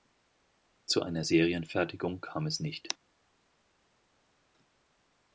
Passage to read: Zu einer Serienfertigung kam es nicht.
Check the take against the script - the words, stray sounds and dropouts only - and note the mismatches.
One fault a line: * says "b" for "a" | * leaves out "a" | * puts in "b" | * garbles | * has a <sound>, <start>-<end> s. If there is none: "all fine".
all fine